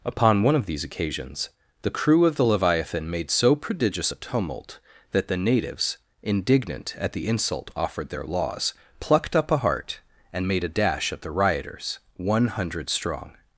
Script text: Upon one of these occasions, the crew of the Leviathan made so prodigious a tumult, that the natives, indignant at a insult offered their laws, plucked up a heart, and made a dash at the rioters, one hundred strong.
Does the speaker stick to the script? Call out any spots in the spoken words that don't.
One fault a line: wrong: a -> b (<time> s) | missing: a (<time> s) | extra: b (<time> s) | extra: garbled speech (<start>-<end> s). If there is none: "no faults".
wrong: a -> the (7.1 s)